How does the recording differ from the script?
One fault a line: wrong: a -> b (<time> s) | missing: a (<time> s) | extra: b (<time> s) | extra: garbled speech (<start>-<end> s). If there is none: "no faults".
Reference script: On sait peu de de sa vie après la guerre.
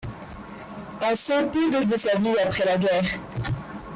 no faults